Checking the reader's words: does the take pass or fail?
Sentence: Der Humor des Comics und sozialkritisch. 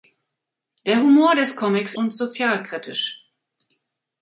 pass